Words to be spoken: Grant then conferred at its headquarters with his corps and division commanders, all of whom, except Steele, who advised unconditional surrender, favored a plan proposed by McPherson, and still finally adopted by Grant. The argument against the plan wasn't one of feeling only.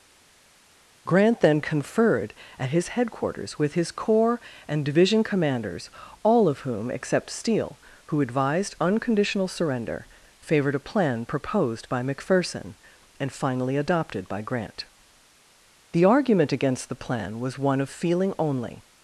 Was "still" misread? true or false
true